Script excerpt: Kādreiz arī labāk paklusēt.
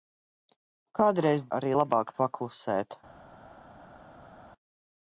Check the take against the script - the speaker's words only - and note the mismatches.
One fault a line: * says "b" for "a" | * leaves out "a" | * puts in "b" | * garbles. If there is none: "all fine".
all fine